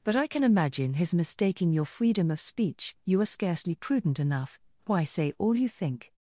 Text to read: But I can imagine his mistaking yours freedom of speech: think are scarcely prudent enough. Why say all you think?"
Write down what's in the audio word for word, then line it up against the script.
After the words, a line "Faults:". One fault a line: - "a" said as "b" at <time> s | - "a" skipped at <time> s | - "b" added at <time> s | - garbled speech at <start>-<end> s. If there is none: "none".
But I can imagine his mistaking your freedom of speech: you are scarcely prudent enough. Why say all you think?"
Faults:
- "yours" said as "your" at 1.7 s
- "think" said as "you" at 3.0 s